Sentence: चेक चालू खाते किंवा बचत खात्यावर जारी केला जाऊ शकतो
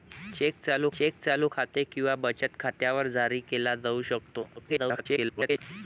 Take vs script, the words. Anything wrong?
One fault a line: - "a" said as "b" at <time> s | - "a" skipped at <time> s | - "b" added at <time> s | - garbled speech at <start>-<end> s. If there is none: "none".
- "चेक चालू" added at 0.9 s
- garbled speech at 4.6-5.6 s